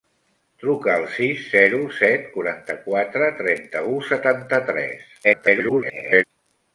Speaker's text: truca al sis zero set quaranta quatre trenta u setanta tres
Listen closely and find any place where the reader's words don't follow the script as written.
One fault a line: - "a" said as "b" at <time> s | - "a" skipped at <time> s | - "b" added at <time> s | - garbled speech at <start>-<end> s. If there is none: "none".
- garbled speech at 5.2-6.2 s